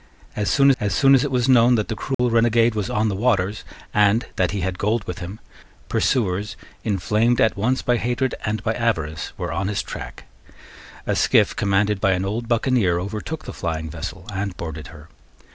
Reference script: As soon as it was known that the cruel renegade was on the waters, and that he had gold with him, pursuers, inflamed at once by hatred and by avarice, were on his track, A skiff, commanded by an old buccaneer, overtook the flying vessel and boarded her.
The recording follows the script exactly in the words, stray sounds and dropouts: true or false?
false